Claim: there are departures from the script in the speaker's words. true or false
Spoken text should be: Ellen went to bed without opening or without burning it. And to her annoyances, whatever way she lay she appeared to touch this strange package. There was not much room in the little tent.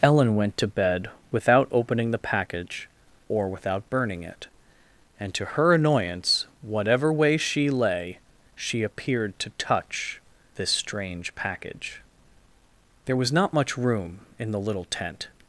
true